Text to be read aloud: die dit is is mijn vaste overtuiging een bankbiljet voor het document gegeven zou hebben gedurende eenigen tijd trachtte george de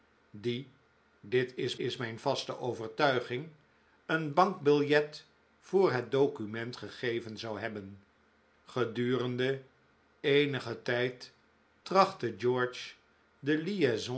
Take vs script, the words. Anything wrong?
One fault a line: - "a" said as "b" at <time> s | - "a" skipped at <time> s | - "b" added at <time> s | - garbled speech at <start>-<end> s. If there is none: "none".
none